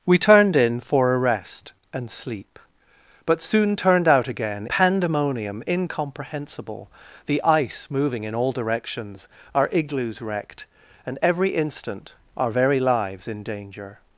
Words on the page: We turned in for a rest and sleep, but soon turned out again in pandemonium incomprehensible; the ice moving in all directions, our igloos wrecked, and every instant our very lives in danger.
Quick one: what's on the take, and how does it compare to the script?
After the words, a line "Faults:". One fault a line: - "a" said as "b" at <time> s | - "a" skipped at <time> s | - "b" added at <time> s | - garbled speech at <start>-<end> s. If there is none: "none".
We turned in for a rest and sleep, but soon turned out again pandemonium incomprehensible; the ice moving in all directions, our igloos wrecked, and every instant our very lives in danger.
Faults:
- "in" skipped at 4.7 s